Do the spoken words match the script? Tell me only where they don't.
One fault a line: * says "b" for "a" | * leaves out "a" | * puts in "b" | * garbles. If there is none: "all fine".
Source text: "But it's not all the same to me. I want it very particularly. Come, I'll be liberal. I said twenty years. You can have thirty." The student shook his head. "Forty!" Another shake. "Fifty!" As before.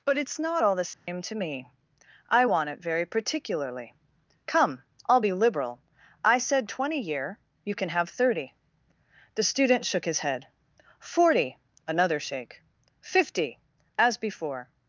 * says "year" for "years"